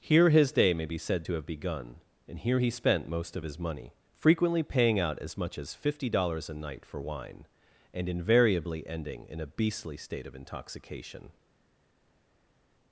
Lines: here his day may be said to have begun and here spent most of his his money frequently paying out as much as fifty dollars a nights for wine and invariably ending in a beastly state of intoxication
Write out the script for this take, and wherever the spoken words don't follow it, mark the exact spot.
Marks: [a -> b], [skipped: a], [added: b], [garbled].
here his day may be said to have begun and here [added: he] spent most of his [skipped: his] money frequently paying out as much as fifty dollars a [nights -> night] for wine and invariably ending in a beastly state of intoxication